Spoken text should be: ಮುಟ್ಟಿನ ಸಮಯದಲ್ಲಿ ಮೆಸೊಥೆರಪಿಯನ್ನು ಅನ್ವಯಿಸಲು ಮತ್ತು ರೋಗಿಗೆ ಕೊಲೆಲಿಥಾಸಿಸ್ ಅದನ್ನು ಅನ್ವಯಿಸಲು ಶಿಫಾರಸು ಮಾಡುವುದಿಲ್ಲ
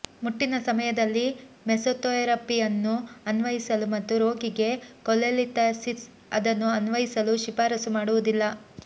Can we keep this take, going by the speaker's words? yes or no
yes